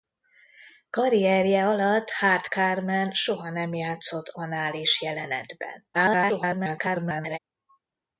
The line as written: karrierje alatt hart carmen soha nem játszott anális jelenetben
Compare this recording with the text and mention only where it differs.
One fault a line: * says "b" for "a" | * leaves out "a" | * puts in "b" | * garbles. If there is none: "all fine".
* garbles